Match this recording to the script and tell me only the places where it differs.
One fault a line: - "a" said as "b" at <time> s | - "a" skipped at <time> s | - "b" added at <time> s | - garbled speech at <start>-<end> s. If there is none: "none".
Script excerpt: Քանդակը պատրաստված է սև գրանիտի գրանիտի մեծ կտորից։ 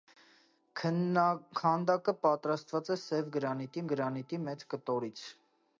none